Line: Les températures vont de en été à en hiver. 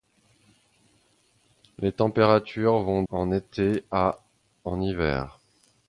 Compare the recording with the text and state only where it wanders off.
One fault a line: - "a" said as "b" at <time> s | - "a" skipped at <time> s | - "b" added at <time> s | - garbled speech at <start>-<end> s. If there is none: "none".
- "de" skipped at 3.0 s